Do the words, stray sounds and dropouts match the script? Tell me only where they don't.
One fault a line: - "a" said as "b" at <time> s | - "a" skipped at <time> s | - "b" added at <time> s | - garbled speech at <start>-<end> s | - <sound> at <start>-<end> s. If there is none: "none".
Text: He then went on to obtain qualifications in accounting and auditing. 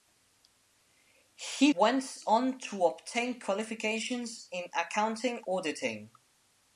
- "then" skipped at 1.7 s
- "and" skipped at 5.4 s